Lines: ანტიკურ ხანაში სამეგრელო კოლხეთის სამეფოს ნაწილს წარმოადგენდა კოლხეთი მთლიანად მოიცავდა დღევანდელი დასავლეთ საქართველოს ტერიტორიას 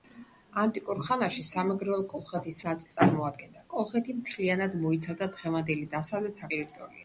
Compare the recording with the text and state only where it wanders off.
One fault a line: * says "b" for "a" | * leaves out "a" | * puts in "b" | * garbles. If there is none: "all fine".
* leaves out "სამეფოს"
* leaves out "საქართველოს"